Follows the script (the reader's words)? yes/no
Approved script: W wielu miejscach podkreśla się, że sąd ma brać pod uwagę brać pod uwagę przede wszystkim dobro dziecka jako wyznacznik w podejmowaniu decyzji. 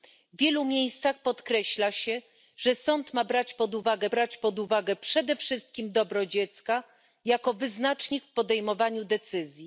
yes